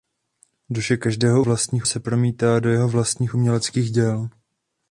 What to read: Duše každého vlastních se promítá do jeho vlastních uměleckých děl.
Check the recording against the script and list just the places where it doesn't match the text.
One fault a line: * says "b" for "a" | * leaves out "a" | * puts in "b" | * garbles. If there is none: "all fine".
all fine